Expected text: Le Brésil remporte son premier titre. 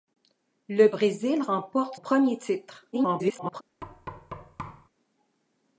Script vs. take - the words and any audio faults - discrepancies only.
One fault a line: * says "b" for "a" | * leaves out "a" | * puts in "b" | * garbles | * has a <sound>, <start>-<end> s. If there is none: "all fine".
* leaves out "son"
* garbles
* has a thud, 3.8-4.9 s